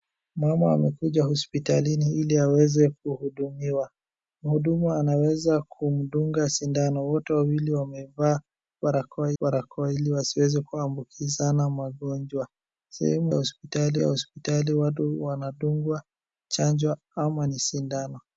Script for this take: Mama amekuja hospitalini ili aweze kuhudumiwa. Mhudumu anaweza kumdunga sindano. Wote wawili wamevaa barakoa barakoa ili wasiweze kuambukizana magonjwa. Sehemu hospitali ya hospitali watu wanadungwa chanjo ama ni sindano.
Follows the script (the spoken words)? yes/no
yes